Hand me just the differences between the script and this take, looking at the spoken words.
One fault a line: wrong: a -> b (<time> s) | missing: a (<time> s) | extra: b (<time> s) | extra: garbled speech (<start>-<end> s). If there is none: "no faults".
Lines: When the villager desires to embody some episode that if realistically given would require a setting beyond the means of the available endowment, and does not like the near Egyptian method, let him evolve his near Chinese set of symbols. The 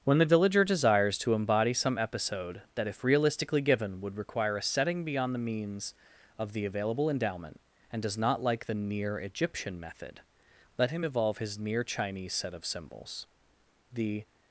no faults